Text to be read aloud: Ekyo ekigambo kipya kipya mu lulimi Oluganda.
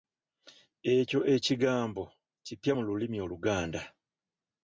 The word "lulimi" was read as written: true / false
true